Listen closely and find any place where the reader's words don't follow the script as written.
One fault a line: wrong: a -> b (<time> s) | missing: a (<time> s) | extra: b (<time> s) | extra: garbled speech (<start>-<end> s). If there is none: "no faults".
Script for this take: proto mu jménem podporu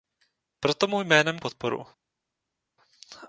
no faults